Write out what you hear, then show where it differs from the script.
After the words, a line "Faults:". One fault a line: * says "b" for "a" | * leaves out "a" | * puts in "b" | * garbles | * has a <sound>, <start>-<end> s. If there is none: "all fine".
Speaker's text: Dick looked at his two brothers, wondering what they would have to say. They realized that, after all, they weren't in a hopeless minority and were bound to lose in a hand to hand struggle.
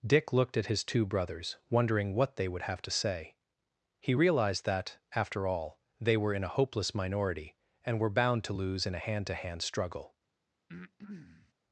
Dick looked at his two brothers, wondering what they would have to say. He realized that, after all, they were in a hopeless minority and were bound to lose in a hand to hand struggle.
Faults:
* says "He" for "They"
* says "were" for "weren't"
* has a breath, 10.7-11.5 s